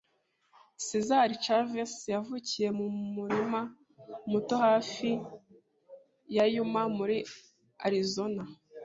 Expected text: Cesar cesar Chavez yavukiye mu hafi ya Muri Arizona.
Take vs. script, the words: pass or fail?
fail